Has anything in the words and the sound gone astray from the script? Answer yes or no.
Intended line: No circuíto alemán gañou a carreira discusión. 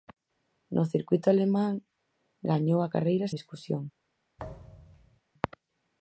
yes